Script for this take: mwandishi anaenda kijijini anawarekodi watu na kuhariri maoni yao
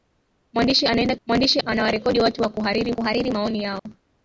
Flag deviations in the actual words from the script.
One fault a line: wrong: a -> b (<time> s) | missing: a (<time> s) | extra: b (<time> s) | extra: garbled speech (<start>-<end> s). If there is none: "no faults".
wrong: kijijini -> mwandishi (1.3 s)
extra: kuhariri (2.9 s)